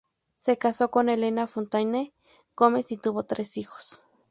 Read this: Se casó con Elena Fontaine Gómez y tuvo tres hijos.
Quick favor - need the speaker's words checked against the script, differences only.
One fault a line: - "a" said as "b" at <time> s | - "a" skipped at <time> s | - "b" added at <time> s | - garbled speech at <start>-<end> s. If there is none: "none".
none